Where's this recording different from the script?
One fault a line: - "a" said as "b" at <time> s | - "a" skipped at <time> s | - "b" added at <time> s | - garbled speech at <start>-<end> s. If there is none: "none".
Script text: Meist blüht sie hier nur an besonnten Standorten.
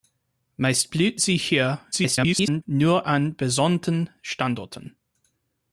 - garbled speech at 1.9-2.6 s